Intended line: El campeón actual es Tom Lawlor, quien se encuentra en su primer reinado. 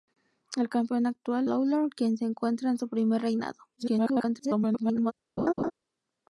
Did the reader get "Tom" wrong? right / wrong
wrong